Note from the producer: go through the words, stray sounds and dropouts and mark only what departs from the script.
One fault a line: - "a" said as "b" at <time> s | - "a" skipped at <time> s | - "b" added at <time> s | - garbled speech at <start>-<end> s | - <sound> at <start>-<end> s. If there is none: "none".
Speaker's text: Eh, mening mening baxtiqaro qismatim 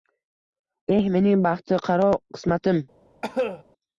- "mening" skipped at 1.4 s
- cough at 3.2-3.6 s